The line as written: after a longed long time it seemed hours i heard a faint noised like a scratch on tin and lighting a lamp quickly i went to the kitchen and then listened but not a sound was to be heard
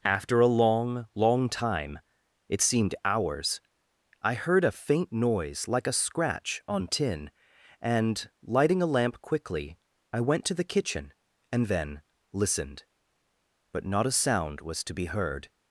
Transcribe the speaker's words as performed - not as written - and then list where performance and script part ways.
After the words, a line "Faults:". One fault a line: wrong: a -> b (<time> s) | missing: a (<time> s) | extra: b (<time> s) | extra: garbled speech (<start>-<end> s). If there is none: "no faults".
after a long long time it seemed hours i heard a faint noise like a scratch on tin and lighting a lamp quickly i went to the kitchen and then listened but not a sound was to be heard
Faults:
wrong: longed -> long (0.5 s)
wrong: noised -> noise (5.1 s)